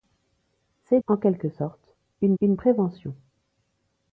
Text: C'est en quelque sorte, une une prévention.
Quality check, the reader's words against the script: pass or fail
pass